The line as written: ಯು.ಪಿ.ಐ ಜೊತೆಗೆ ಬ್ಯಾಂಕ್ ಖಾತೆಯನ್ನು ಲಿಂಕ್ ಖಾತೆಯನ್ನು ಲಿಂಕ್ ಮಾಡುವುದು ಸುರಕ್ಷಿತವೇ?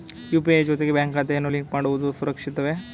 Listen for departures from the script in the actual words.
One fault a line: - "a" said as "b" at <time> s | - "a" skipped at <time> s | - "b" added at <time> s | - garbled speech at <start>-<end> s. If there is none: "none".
- "ಖಾತೆಯನ್ನು ಲಿಂಕ್" skipped at 1.7 s